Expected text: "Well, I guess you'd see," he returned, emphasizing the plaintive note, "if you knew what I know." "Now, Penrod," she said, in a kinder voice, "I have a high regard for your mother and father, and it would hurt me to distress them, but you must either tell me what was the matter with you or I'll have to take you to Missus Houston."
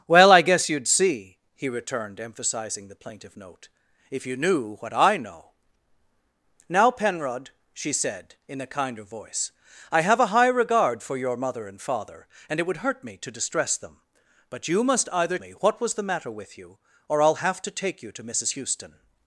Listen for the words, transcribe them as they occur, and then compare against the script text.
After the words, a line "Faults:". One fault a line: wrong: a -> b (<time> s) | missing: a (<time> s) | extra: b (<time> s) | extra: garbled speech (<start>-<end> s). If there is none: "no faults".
"Well, I guess you'd see," he returned, emphasizing the plaintive note, "if you knew what I know." "Now, Penrod," she said, in a kinder voice, "I have a high regard for your mother and father, and it would hurt me to distress them, but you must either me what was the matter with you or I'll have to take you to Missus Houston."
Faults:
missing: tell (15.4 s)